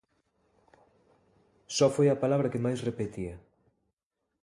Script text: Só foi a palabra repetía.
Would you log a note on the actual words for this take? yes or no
yes